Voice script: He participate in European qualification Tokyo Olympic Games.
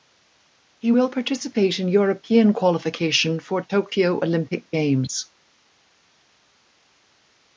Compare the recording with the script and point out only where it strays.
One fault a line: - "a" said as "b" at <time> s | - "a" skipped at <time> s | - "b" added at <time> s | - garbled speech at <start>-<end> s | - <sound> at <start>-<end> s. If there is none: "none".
- "will" added at 0.9 s
- "for" added at 3.4 s